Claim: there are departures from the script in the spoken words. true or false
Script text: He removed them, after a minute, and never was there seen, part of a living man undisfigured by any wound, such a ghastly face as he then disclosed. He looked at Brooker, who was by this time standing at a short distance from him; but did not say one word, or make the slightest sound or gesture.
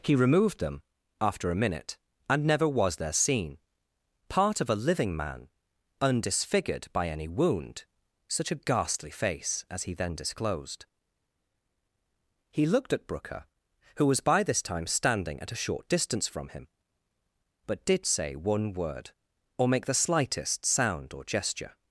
true